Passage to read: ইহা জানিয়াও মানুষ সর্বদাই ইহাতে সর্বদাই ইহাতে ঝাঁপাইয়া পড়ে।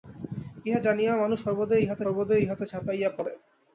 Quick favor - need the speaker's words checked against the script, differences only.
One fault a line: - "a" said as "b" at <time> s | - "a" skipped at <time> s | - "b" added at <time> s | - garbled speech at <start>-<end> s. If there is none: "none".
none